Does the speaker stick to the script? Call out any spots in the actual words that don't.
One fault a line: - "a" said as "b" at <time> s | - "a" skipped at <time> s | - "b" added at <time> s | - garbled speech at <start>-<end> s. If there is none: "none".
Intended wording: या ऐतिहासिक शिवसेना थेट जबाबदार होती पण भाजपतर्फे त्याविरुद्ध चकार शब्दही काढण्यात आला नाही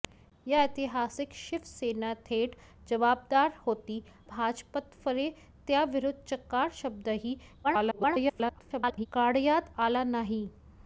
- "पण" skipped at 4.0 s
- garbled speech at 7.6-9.1 s